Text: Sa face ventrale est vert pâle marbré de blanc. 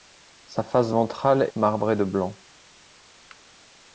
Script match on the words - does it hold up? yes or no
no